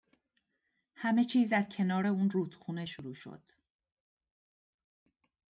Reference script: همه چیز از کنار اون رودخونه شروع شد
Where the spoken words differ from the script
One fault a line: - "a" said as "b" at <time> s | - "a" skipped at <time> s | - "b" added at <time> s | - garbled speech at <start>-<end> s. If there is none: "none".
none